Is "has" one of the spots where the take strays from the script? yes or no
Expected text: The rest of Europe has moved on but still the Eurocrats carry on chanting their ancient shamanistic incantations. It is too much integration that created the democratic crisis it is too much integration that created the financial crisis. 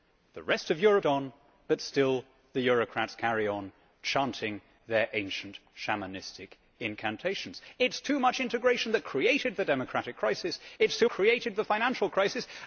yes